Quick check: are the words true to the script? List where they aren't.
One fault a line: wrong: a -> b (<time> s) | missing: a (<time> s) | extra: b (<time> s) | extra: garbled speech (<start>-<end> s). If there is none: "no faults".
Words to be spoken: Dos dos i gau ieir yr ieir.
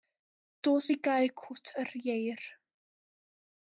missing: dos (0.9 s)
wrong: ieir -> cwt (1.4 s)